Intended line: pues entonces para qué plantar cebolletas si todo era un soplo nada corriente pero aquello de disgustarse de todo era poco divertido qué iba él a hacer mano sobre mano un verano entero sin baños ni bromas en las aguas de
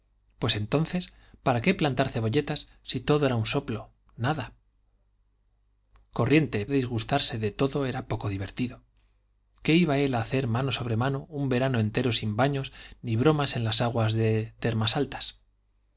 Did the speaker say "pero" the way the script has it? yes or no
no